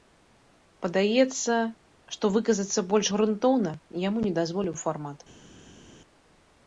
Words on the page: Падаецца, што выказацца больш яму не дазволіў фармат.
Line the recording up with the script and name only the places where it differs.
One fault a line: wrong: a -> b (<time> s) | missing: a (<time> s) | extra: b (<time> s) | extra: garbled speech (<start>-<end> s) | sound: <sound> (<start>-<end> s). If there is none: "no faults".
extra: грунтоўна (3.2 s)